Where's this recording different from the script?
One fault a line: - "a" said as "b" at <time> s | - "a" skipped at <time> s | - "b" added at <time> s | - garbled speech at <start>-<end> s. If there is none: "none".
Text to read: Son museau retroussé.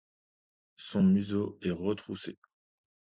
- "est" added at 1.6 s